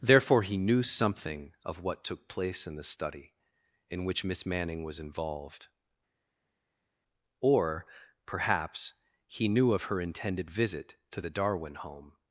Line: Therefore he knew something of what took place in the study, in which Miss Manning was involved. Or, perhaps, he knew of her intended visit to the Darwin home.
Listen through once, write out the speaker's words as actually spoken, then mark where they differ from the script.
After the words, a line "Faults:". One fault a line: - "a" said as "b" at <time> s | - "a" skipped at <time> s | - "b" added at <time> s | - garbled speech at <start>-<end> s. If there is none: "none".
Therefore he knew something of what took place in the study, in which Miss Manning was involved. Or, perhaps, he knew of her intended visit to the Darwin home.
Faults:
none